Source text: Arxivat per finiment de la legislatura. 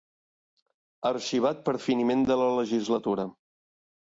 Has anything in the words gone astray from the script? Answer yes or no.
no